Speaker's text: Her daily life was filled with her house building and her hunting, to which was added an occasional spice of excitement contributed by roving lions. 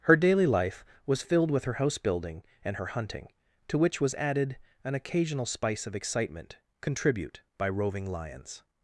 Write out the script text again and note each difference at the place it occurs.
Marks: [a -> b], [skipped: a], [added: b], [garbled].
Her daily life was filled with her house building and her hunting, to which was added an occasional spice of excitement [contributed -> contribute] by roving lions.